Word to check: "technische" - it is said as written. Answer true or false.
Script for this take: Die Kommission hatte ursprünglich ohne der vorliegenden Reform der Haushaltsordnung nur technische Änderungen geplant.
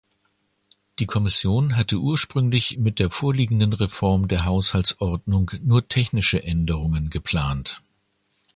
true